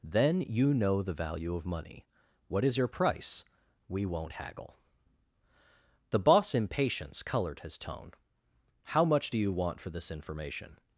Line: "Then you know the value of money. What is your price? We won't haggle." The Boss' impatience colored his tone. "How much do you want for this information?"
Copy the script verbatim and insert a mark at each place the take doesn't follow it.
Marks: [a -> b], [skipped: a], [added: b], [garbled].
"Then you know the value of money. What is your price? We won't haggle." The Boss' impatience colored his tone. "How much do you want for this information?"